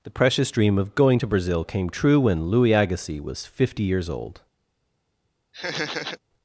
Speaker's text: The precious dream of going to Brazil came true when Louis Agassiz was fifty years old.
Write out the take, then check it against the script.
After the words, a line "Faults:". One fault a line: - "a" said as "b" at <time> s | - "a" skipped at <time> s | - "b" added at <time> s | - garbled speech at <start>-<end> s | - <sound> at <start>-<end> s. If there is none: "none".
The precious dream of going to Brazil came true when Louis Agassiz was fifty years old.
Faults:
- laugh at 5.5-6.2 s